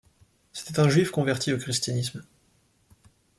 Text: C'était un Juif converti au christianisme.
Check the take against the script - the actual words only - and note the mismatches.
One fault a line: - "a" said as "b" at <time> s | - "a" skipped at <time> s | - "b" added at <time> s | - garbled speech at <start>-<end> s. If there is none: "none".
none